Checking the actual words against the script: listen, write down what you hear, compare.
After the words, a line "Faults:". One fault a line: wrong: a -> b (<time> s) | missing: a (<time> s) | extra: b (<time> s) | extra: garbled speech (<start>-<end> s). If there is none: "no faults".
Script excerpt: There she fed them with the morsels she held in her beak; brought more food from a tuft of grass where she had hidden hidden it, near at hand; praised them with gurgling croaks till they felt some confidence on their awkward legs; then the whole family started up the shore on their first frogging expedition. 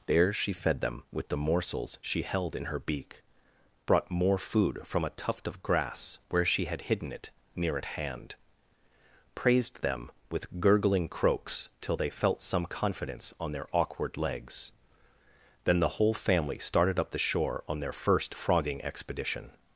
There she fed them with the morsels she held in her beak; brought more food from a tuft of grass where she had hidden it, near at hand; praised them with gurgling croaks till they felt some confidence on their awkward legs; then the whole family started up the shore on their first frogging expedition.
Faults:
missing: hidden (7.1 s)